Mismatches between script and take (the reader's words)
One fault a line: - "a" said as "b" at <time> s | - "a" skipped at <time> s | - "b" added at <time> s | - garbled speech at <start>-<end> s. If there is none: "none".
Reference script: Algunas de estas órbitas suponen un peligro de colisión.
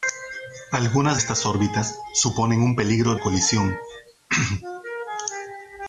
- "de" skipped at 1.2 s
- "de" skipped at 3.1 s